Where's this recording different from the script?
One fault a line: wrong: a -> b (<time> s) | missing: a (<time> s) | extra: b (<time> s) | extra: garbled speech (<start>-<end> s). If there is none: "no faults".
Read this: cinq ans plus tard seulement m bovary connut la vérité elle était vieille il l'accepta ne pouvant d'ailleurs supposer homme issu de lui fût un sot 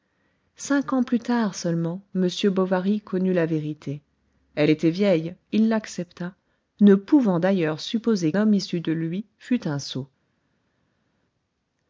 no faults